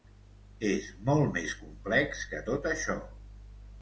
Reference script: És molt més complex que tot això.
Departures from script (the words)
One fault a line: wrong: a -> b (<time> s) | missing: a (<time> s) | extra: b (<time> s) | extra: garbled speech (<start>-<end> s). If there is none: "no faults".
no faults